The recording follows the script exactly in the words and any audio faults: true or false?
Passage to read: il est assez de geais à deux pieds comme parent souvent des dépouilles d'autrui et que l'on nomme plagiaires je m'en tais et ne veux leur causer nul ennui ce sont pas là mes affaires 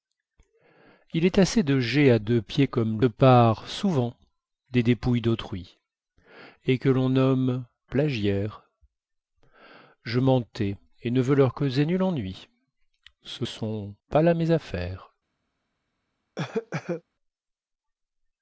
false